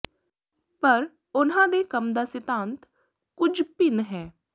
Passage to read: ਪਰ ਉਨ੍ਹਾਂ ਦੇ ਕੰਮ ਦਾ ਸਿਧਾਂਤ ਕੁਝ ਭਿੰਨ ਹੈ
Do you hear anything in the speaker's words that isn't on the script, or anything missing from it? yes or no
no